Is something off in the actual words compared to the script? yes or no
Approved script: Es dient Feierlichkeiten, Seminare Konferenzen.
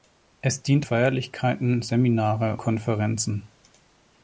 no